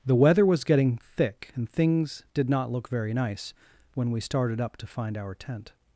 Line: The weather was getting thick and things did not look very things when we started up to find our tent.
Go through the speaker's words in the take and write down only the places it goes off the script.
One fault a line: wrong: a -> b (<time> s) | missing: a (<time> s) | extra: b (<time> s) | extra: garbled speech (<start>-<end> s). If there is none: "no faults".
wrong: things -> nice (3.1 s)